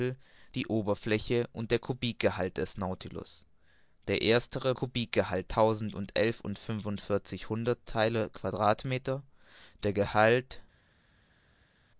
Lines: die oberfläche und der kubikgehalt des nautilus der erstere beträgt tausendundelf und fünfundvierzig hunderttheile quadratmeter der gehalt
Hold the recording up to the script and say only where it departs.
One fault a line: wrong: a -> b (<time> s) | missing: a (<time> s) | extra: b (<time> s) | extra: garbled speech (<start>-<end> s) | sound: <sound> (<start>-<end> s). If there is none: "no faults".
wrong: beträgt -> kubikgehalt (4.7 s)